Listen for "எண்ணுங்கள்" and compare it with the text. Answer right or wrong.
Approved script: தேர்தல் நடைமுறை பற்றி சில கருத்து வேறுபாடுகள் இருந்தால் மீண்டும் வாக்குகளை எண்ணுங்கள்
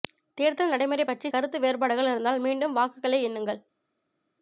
right